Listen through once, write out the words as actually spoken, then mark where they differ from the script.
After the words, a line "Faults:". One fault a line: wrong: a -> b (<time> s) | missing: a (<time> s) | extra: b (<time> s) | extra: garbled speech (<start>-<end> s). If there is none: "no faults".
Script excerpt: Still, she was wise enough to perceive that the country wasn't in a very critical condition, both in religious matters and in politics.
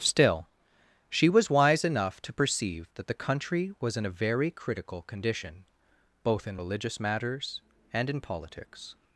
Still, she was wise enough to perceive that the country was in a very critical condition, both in religious matters and in politics.
Faults:
wrong: wasn't -> was (3.8 s)